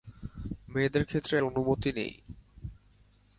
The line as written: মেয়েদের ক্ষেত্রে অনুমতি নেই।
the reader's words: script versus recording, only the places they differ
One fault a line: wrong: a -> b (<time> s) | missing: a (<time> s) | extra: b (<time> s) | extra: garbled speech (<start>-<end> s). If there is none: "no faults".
no faults